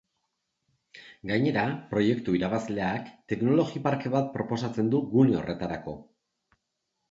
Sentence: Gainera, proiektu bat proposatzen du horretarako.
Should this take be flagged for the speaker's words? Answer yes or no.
yes